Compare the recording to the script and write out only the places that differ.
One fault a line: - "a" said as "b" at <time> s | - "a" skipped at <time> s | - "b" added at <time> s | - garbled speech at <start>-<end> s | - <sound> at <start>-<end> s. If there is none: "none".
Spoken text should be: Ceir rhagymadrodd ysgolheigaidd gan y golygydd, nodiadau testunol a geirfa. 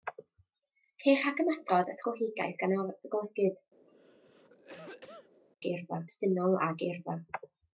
- cough at 3.9-5.4 s
- "nodiadau" said as "geirfa" at 5.6 s